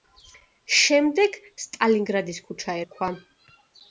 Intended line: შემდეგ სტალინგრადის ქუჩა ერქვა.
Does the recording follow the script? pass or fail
pass